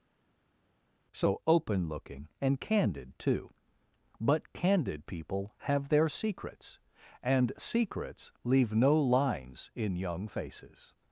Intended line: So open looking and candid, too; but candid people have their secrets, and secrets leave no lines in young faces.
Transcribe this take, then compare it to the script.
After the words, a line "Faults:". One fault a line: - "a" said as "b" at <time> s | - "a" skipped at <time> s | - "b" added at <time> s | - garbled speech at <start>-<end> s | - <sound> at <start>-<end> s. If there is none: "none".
So open looking and candid, too; but candid people have their secrets, and secrets leave no lines in young faces.
Faults:
none